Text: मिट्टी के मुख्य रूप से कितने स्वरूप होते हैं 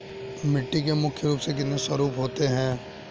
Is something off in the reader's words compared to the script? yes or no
no